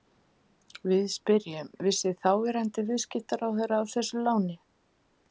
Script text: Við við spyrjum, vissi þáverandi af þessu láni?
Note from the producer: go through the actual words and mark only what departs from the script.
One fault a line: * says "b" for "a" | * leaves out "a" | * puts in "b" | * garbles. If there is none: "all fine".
* leaves out "við"
* puts in "viðskiptaráðherra"